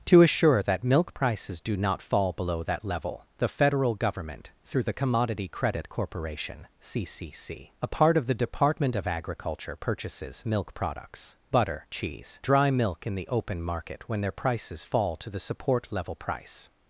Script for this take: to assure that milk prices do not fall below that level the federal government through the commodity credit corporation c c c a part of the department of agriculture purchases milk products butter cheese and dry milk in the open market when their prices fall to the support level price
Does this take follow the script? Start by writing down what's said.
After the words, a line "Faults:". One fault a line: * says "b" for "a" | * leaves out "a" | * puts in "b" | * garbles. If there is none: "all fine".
to assure that milk prices do not fall below that level the federal government through the commodity credit corporation c c c a part of the department of agriculture purchases milk products butter cheese dry milk in the open market when their prices fall to the support level price
Faults:
* leaves out "and"